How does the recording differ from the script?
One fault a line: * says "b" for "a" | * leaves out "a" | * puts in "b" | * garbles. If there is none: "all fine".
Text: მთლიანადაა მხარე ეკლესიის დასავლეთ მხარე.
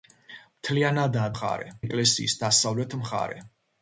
all fine